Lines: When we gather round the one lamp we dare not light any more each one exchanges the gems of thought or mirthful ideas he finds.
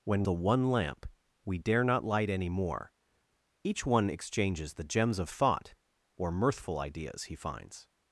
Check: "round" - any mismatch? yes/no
yes